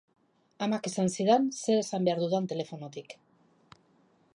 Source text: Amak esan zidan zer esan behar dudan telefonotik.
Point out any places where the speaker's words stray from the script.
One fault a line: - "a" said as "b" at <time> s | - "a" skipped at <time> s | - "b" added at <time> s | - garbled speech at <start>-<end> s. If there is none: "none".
none